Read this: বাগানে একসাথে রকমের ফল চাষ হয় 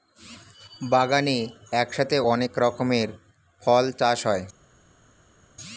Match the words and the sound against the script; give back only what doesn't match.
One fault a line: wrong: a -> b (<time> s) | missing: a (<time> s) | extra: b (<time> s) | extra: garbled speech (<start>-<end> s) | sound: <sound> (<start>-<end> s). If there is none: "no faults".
extra: অনেক (2.3 s)